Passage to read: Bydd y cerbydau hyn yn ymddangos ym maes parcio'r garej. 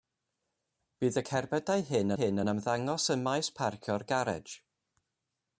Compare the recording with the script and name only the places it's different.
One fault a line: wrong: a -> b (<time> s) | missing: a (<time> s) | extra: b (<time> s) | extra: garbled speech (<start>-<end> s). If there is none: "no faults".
extra: hyn (2.2 s)